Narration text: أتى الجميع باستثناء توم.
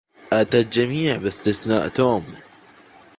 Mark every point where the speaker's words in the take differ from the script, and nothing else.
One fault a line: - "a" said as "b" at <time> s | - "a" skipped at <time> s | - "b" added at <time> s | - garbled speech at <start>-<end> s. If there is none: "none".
none